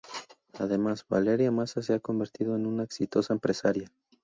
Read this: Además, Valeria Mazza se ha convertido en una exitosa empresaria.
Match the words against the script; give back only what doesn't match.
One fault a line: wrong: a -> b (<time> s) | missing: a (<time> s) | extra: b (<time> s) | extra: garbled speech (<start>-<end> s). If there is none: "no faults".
no faults